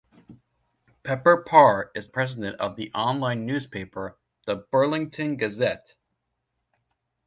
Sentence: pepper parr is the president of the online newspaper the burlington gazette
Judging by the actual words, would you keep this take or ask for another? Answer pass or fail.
fail